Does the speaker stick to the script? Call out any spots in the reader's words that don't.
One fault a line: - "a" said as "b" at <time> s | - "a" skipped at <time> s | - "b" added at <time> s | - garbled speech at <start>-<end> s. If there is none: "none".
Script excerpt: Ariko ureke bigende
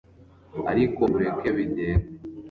none